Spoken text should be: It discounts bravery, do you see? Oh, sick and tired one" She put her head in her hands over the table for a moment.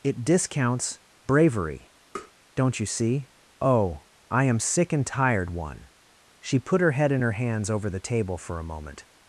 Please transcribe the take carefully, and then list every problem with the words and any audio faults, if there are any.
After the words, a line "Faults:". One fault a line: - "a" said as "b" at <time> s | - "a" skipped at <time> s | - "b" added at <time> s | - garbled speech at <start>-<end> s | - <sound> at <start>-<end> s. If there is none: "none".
It discounts bravery, don't you see? Oh, I am sick and tired one" She put her head in her hands over the table for a moment.
Faults:
- tap at 2.2-2.3 s
- "do" said as "don't" at 2.6 s
- "I am" added at 4.3 s